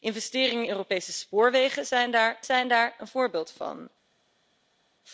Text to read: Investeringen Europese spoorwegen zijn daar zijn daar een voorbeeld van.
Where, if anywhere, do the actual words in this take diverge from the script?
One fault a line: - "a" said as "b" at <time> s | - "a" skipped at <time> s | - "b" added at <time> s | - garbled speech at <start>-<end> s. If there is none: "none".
none